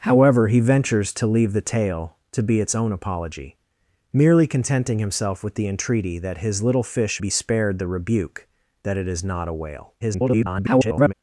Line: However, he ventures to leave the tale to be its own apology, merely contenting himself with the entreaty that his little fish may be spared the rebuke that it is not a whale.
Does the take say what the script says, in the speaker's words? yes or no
no